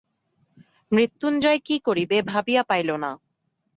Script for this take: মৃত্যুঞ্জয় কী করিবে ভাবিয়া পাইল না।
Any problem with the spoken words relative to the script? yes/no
no